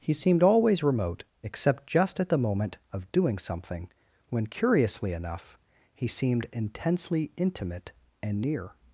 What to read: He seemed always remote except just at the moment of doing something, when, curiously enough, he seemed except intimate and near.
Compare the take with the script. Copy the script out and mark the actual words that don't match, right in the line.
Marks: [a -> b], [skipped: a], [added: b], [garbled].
He seemed always remote except just at the moment of doing something, when, curiously enough, he seemed [except -> intensely] intimate and near.